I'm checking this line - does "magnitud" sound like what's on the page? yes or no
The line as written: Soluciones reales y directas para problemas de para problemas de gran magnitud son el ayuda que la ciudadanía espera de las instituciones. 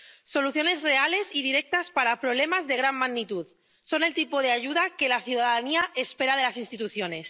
yes